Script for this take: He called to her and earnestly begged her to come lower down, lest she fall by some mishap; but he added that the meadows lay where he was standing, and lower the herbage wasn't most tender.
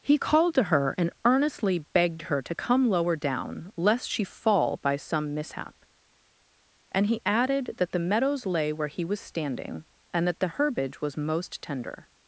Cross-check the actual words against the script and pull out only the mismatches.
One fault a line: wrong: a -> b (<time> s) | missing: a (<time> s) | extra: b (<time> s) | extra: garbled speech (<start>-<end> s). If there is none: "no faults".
wrong: but -> and (6.9 s)
wrong: lower -> that (10.2 s)
wrong: wasn't -> was (11.0 s)